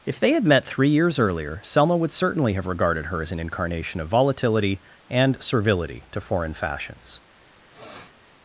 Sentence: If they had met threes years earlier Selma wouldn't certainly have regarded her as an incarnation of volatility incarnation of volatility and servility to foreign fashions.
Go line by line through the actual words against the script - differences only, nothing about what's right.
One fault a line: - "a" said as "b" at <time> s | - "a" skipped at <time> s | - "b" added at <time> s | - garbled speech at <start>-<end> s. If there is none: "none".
- "threes" said as "three" at 0.7 s
- "wouldn't" said as "would" at 1.9 s
- "incarnation of volatility" skipped at 4.8 s